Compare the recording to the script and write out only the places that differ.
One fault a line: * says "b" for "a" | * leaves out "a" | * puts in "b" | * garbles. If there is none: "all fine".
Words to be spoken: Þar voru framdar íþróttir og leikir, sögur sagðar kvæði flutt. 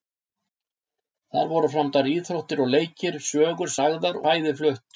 all fine